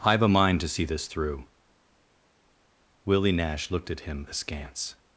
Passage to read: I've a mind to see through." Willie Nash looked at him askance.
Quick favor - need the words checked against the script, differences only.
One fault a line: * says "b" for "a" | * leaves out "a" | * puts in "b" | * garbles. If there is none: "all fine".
* puts in "this"